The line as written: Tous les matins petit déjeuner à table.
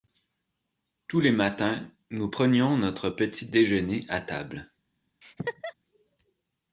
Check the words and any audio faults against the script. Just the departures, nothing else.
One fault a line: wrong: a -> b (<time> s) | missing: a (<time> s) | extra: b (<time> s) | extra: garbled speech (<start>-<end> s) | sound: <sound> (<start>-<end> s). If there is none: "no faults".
extra: nous prenions notre (2.1 s)
sound: laugh (5.2-5.7 s)